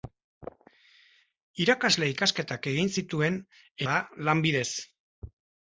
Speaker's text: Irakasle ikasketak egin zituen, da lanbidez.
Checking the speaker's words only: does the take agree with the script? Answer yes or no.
yes